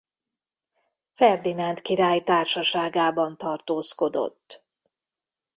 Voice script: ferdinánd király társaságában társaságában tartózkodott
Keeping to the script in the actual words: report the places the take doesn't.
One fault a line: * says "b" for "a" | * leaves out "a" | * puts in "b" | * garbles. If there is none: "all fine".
* leaves out "társaságában"